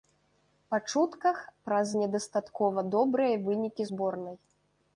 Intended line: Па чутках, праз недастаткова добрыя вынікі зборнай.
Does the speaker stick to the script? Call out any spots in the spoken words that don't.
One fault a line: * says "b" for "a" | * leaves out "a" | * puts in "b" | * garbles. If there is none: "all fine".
all fine